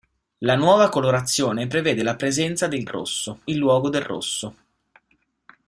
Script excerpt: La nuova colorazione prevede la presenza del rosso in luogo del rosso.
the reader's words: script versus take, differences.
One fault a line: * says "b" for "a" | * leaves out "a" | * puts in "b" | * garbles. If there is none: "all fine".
all fine